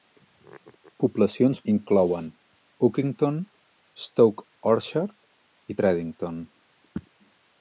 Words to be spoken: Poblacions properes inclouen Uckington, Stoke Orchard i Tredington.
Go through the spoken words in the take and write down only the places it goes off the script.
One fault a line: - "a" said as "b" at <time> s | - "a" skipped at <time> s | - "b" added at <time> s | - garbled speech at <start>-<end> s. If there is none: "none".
- "properes" skipped at 1.6 s